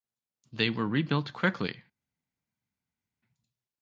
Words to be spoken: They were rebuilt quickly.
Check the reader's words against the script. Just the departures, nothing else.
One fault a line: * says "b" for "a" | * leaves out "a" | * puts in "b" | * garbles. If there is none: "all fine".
all fine